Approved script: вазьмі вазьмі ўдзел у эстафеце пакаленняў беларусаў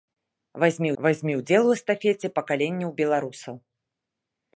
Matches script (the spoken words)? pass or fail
pass